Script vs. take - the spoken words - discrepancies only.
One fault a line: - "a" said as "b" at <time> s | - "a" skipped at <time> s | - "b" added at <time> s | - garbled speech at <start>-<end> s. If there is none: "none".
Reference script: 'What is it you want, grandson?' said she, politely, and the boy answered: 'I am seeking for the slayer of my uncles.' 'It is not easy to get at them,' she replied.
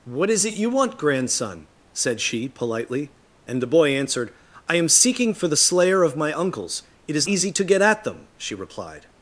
- "not" skipped at 7.3 s